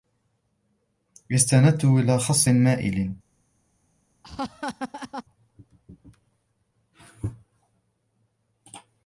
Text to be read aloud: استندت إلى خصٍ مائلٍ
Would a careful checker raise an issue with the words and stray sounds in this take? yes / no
yes